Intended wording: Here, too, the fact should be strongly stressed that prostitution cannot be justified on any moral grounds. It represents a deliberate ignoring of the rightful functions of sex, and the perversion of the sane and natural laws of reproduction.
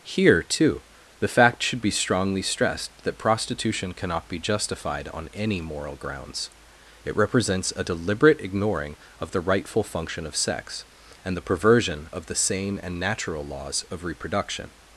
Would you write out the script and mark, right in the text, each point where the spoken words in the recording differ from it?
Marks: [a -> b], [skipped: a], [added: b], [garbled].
Here, too, the fact should be strongly stressed that prostitution cannot be justified on any moral grounds. It represents a deliberate ignoring of the rightful [functions -> function] of sex, and the perversion of the sane and natural laws of reproduction.